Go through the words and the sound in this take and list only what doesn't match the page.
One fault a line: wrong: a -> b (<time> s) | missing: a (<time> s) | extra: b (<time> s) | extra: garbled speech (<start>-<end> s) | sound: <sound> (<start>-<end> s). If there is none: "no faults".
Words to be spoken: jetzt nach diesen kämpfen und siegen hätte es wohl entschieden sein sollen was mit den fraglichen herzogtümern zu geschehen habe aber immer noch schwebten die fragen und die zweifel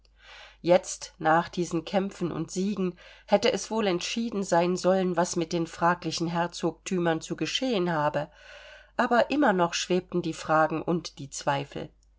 no faults